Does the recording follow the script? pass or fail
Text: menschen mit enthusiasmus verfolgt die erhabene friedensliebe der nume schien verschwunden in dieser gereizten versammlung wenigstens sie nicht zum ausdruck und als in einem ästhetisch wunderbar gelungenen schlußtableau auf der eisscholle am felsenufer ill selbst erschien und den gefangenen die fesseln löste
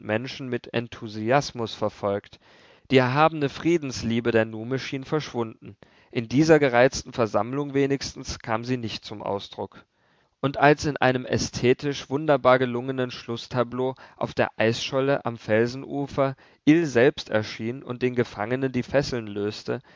fail